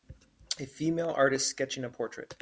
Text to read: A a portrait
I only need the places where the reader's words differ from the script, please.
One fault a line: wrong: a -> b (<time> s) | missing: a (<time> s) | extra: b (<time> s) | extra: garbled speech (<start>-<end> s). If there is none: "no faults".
extra: female artist sketching (0.7 s)